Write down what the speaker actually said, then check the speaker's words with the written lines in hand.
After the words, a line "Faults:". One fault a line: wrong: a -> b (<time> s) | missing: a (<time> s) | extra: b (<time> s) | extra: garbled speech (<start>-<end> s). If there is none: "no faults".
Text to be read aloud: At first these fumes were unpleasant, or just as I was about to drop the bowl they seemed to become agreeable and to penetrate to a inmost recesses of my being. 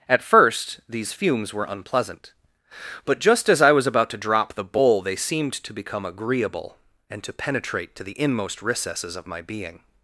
At first these fumes were unpleasant, but just as I was about to drop the bowl they seemed to become agreeable and to penetrate to the inmost recesses of my being.
Faults:
wrong: or -> but (3.1 s)
wrong: a -> the (8.0 s)